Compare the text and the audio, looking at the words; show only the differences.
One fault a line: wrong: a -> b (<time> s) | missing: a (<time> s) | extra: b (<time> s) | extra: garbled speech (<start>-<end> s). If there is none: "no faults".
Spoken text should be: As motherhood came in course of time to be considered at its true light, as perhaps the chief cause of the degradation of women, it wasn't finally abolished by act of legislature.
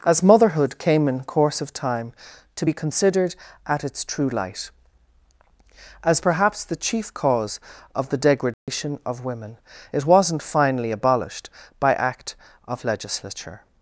no faults